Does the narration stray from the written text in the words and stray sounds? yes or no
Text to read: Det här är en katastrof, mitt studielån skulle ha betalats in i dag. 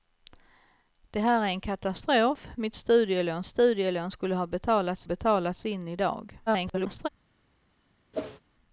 yes